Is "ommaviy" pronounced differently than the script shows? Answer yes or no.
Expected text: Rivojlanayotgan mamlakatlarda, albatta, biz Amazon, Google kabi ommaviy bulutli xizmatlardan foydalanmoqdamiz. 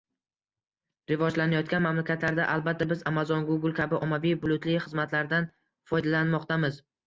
no